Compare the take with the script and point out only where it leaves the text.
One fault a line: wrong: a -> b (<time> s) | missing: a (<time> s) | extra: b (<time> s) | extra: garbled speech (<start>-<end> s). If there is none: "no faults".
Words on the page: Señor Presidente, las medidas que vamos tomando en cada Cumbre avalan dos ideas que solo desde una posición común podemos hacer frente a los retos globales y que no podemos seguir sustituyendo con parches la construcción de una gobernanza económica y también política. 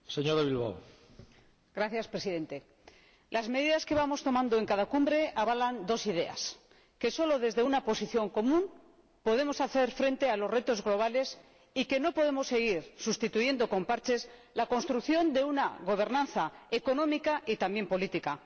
no faults